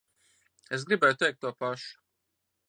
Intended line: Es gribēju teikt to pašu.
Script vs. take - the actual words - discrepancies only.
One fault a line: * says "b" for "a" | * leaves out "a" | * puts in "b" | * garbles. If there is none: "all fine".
all fine